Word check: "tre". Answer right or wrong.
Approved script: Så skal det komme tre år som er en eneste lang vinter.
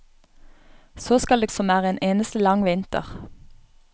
wrong